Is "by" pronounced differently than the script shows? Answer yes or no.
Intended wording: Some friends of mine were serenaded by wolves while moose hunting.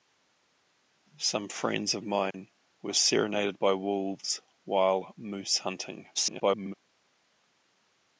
no